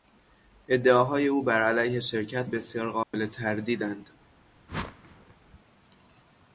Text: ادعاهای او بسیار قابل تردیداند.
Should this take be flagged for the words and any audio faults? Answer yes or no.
yes